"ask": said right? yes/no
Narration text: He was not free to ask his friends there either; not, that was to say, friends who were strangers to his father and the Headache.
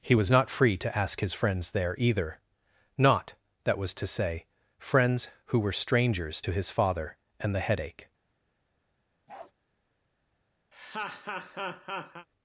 yes